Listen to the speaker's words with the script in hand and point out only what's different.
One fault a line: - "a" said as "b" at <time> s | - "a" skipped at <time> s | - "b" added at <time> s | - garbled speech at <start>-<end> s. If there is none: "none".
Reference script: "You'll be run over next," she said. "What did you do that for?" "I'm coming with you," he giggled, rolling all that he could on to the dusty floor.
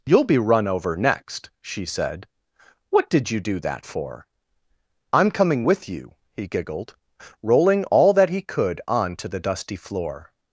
none